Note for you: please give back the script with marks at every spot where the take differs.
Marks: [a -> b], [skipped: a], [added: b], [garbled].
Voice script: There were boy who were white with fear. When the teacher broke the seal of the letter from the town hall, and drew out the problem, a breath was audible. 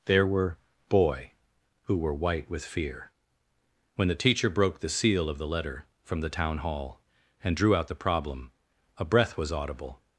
There were boy who were white with fear. When the teacher broke the seal of the letter from the town hall, and drew out the problem, a breath was audible.